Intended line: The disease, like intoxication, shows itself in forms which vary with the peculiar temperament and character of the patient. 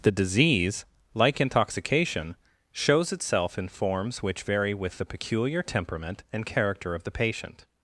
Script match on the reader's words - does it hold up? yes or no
yes